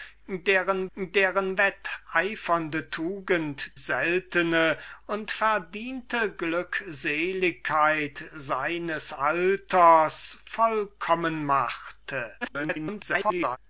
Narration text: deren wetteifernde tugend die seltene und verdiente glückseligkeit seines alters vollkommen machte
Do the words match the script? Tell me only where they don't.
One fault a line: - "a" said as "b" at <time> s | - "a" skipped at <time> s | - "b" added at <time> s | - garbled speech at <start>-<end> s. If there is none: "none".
- "deren" added at 1.0 s
- "die" skipped at 3.7 s
- garbled speech at 12.4-13.6 s